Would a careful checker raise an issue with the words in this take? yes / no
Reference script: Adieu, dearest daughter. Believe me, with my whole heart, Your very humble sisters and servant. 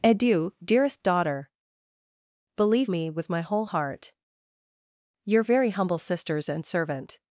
no